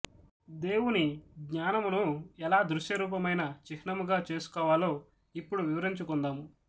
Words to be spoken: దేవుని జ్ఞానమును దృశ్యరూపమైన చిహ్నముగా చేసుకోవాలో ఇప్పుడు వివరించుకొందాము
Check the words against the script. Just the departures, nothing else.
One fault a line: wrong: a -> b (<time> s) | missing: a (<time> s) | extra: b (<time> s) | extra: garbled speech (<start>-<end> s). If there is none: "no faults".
extra: ఎలా (2.4 s)